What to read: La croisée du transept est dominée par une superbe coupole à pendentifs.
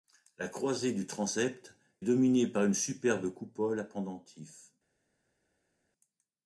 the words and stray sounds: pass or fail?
fail